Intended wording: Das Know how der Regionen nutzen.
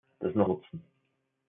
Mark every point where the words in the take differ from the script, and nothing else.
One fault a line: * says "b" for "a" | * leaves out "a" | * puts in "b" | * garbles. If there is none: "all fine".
* leaves out "how der Regionen"